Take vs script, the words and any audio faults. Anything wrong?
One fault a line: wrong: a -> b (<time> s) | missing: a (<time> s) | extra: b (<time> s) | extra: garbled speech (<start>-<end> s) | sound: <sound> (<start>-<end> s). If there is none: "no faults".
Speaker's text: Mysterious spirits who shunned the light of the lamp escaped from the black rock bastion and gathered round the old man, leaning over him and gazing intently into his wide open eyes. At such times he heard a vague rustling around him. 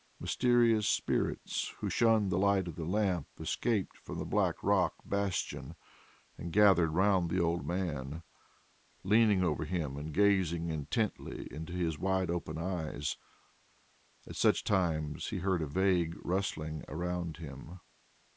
no faults